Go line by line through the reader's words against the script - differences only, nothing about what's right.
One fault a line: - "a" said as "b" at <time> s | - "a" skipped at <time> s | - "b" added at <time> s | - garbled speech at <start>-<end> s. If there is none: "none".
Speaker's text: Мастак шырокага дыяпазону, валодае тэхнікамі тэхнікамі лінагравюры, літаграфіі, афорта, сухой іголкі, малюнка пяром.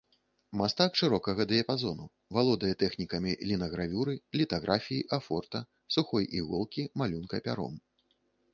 - "тэхнікамі" skipped at 3.4 s